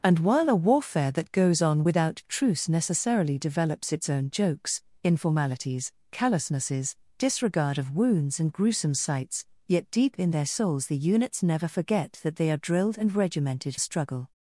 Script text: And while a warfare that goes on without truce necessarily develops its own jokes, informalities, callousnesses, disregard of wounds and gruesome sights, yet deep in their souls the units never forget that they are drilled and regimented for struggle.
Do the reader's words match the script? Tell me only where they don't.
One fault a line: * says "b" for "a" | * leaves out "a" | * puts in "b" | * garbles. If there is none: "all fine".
* leaves out "for"